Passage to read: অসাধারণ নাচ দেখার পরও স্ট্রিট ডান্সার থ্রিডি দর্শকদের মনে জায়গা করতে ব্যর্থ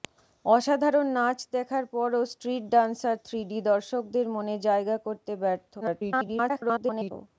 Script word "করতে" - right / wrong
right